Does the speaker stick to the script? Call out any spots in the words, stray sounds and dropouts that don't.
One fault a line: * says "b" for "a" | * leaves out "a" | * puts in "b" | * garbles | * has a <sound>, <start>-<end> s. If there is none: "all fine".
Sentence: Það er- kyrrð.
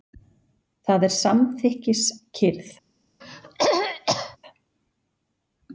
* puts in "samþykkis"
* has a throat clearing, 3.2-4.4 s